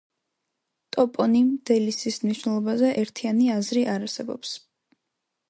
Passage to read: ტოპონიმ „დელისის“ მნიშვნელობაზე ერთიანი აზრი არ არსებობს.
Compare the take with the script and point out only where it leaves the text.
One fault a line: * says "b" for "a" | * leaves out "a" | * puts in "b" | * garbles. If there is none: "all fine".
all fine